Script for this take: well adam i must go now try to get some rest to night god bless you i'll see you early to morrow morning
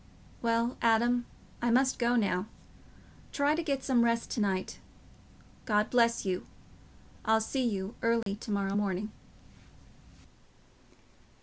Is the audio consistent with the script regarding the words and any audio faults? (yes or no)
no